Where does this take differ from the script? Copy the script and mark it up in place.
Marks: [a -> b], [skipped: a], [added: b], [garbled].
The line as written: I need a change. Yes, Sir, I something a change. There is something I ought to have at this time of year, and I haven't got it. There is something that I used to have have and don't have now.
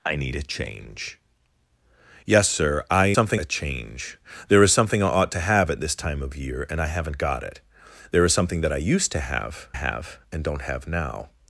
I need a change. Yes, Sir, I something a change. There is something I ought to have at this time of year, and I haven't got it. There is something that I used to have have and don't have now.